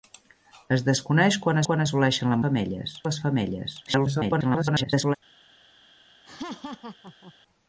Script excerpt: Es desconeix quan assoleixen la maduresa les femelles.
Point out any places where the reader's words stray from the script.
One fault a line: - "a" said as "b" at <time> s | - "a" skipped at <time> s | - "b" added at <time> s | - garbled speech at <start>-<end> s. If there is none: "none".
- "quan" added at 1.7 s
- "maduresa" said as "femelles" at 2.5 s
- garbled speech at 3.9-5.2 s